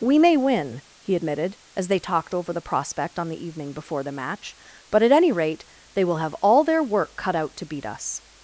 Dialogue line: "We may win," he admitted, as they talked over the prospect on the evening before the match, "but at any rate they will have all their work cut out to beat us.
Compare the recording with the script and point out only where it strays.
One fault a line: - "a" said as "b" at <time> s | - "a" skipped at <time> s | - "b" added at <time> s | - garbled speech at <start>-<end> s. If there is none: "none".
none